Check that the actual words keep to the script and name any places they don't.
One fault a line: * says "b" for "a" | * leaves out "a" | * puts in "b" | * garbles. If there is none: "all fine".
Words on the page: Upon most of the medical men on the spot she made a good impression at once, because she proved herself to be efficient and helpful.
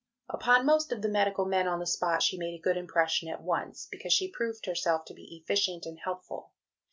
all fine